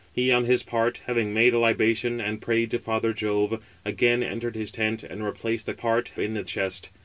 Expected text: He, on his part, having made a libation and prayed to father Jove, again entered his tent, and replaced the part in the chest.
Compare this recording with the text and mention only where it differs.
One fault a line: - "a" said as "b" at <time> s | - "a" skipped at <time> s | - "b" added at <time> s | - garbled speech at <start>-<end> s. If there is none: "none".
none